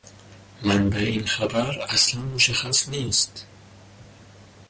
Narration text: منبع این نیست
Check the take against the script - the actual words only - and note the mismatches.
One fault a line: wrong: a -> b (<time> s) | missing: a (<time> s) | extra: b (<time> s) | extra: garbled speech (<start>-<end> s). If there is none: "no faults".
extra: خبر اصلا مشخص (1.3 s)